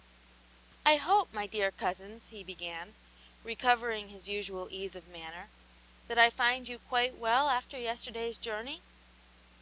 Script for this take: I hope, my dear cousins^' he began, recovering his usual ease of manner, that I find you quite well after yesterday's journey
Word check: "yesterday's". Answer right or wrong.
right